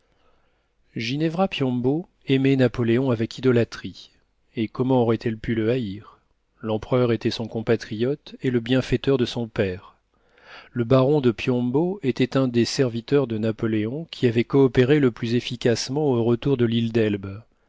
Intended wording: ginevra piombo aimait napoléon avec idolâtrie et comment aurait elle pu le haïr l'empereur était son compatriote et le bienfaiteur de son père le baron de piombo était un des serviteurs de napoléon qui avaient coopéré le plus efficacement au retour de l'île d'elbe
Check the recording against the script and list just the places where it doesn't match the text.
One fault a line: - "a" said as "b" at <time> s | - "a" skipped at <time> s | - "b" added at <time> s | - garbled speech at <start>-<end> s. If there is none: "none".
none